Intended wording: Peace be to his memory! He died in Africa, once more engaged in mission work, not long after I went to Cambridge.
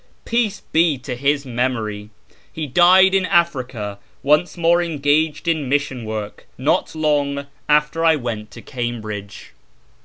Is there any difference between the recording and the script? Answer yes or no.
no